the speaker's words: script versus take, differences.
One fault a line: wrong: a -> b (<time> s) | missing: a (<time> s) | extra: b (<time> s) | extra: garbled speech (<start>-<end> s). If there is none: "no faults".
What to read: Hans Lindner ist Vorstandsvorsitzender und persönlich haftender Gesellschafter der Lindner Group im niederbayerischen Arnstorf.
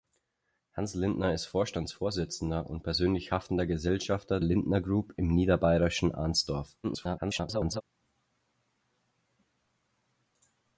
missing: der (4.4 s)
extra: garbled speech (6.8-7.8 s)